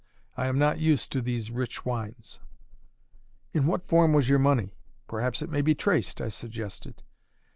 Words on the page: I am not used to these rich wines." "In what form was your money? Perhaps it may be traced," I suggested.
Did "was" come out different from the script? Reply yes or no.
no